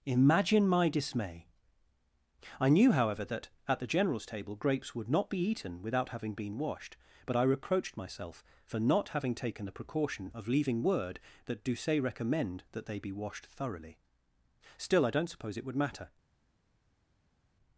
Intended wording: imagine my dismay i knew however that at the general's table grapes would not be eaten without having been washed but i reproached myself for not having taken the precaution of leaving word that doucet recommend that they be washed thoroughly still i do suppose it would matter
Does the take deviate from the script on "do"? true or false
true